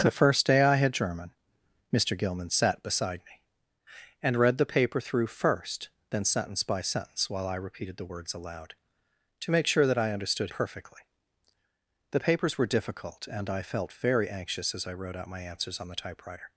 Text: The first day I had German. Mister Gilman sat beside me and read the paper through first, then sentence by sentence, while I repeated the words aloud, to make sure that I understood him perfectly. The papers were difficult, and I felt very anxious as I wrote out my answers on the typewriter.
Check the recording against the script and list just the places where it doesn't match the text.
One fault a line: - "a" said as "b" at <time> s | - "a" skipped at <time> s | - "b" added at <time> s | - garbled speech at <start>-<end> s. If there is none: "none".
- "him" skipped at 10.5 s